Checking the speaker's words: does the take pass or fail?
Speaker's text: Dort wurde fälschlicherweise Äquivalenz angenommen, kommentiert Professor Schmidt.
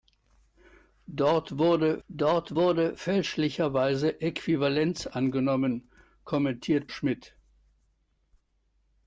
fail